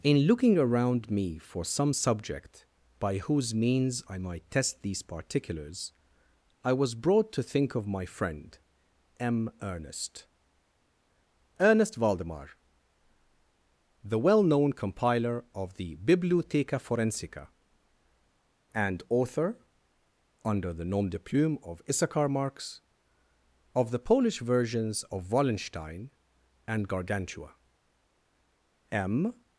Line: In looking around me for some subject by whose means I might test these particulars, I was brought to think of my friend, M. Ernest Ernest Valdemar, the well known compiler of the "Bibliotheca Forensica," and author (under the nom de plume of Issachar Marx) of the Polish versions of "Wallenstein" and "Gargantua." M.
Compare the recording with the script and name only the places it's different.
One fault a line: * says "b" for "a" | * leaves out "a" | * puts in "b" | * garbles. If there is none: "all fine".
all fine